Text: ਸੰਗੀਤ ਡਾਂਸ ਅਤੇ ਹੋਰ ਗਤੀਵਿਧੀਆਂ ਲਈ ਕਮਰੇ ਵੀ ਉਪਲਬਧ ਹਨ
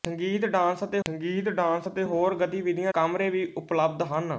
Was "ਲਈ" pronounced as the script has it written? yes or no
no